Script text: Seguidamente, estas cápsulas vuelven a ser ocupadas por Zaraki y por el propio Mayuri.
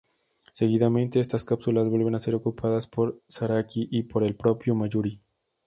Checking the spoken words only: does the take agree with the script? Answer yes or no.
yes